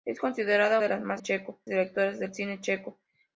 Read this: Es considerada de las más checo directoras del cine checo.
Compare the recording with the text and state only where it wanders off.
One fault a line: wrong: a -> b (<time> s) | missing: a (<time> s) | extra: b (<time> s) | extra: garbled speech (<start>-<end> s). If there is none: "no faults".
no faults